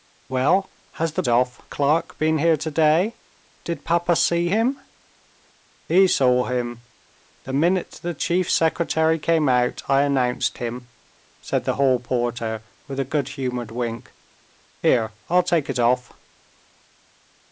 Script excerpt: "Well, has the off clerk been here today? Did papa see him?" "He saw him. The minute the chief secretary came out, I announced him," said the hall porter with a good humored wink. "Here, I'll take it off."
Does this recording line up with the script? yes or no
yes